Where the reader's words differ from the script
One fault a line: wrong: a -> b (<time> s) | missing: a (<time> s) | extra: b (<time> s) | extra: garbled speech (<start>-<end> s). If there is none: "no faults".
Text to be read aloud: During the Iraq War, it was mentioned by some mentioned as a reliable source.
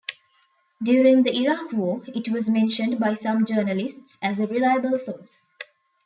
wrong: mentioned -> journalists (3.5 s)